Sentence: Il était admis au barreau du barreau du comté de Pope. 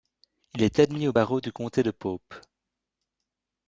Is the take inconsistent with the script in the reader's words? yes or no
yes